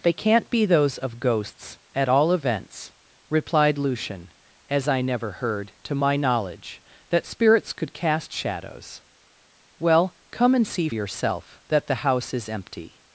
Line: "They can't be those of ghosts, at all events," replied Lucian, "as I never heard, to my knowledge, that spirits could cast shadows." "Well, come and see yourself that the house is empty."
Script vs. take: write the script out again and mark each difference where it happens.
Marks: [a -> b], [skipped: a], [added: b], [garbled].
"They can't be those of ghosts, at all events," replied Lucian, "as I never heard, to my knowledge, that spirits could cast shadows." "Well, come and see yourself that the house is empty."